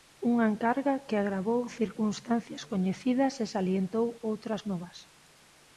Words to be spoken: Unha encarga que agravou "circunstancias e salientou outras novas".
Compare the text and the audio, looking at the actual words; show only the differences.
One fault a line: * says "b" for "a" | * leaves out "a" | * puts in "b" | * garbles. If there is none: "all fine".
* puts in "coñecidas"